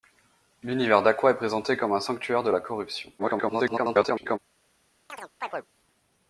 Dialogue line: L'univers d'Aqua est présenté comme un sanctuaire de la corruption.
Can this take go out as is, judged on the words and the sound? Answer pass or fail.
fail